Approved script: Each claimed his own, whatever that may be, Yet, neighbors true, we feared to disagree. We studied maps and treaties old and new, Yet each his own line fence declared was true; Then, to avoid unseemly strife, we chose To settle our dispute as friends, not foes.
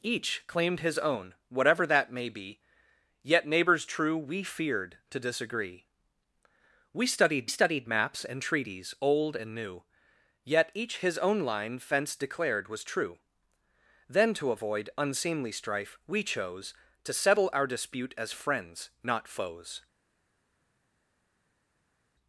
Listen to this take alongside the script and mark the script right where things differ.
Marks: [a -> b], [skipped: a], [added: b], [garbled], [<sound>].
Each claimed his own, whatever that may be, Yet, neighbors true, we feared to disagree. We studied [added: studied] maps and treaties old and new, Yet each his own line fence declared was true; Then, to avoid unseemly strife, we chose To settle our dispute as friends, not foes.